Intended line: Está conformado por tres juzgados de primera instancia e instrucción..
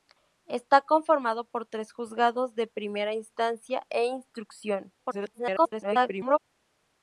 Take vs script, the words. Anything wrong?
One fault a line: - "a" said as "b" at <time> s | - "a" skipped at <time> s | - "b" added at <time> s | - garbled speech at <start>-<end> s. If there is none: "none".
- garbled speech at 5.0-6.4 s